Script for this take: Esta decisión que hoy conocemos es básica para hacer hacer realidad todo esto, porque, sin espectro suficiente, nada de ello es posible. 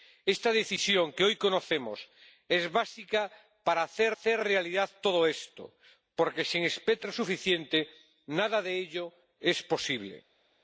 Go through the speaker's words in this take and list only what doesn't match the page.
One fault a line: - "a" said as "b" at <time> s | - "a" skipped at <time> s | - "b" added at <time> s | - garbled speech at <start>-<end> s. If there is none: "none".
none